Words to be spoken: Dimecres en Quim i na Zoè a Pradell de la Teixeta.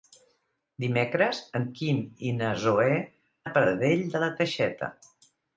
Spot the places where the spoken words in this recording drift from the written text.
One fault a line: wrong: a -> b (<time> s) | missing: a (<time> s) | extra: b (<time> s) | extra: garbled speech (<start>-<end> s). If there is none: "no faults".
no faults